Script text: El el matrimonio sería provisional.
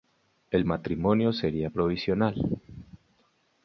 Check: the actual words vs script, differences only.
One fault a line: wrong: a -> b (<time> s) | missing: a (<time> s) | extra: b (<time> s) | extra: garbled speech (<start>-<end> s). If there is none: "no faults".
missing: el (0.7 s)